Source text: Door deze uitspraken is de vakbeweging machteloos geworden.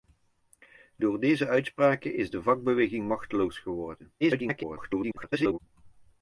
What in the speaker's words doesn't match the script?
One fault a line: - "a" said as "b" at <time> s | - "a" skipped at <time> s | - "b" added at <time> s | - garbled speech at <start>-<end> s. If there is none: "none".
- garbled speech at 4.2-5.6 s